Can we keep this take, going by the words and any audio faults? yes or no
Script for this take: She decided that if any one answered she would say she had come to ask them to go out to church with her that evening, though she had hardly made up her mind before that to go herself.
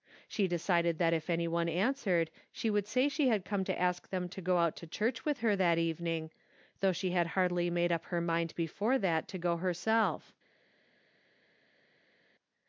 yes